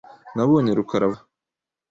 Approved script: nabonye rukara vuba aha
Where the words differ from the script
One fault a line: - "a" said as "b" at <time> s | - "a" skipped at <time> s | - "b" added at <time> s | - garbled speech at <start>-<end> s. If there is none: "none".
- "vuba" skipped at 1.1 s